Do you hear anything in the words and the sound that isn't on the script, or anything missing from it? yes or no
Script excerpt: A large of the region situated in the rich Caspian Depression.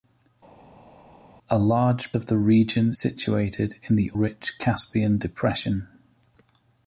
no